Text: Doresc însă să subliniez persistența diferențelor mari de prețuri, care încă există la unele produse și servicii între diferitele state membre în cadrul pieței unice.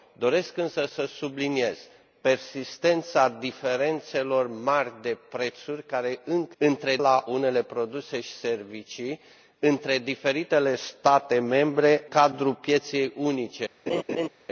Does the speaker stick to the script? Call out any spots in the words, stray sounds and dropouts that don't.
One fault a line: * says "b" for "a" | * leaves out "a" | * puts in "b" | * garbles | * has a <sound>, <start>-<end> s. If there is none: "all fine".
* says "între" for "există"
* leaves out "în"
* has a laugh, 13.9-14.3 s